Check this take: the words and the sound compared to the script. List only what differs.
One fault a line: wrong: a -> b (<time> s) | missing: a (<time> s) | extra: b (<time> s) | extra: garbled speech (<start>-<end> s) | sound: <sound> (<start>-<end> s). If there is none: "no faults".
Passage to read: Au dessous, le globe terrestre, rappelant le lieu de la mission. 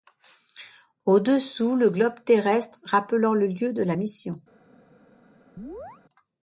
sound: chirp (5.6-6.0 s)